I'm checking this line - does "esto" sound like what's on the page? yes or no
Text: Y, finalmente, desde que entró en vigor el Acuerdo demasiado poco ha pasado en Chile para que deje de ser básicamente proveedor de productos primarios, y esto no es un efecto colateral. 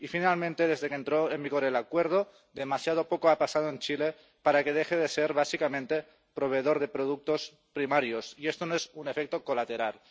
yes